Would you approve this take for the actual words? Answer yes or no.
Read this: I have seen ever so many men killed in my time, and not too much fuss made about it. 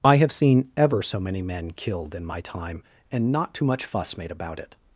yes